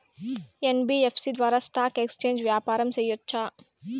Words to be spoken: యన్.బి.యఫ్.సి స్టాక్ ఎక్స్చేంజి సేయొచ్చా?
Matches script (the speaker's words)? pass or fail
fail